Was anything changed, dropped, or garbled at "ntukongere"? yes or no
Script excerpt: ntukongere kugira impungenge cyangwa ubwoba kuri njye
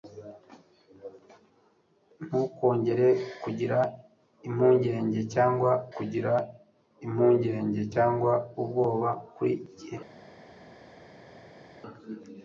no